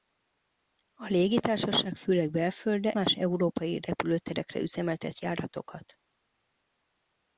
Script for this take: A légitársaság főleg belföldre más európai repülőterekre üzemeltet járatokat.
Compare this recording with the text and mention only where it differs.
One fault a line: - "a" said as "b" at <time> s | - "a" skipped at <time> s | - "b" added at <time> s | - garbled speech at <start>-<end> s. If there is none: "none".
none